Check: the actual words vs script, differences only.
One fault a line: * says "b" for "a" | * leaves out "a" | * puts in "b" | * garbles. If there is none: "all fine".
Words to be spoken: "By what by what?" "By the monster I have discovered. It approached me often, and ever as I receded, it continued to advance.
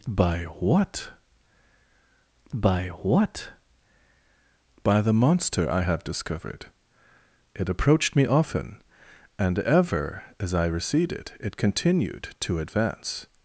all fine